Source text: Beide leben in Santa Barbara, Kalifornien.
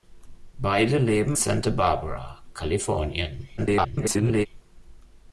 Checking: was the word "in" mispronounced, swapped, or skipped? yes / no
yes